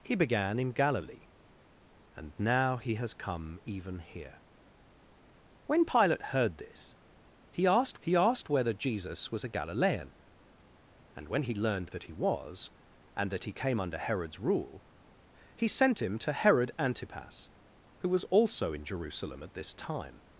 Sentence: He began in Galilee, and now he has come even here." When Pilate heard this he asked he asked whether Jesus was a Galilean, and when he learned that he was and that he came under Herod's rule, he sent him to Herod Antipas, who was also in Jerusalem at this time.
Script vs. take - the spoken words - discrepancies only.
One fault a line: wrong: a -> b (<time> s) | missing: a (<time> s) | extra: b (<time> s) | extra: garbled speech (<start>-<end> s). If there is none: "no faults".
no faults